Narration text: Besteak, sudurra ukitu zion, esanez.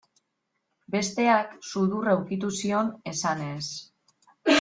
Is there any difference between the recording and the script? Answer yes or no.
no